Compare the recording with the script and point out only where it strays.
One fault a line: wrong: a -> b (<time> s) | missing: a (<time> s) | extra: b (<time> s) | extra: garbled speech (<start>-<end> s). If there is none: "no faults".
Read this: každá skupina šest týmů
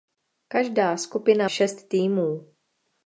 no faults